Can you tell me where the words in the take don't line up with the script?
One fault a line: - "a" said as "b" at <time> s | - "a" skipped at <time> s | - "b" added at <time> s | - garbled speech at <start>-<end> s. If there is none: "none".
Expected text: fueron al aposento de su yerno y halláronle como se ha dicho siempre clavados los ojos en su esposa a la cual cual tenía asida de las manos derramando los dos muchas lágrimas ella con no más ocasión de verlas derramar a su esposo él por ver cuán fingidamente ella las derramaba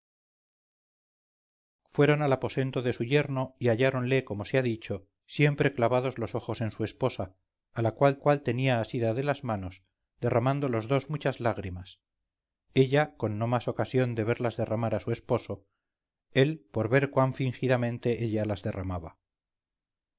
none